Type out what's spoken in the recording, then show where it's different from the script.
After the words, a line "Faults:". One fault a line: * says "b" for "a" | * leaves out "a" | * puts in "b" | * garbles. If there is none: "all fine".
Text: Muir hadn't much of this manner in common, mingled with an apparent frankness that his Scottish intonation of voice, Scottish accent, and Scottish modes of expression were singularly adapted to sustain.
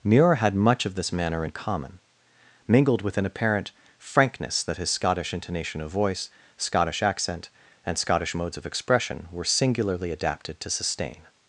Muir had much of this manner in common, mingled with an apparent frankness that his Scottish intonation of voice, Scottish accent, and Scottish modes of expression were singularly adapted to sustain.
Faults:
* says "had" for "hadn't"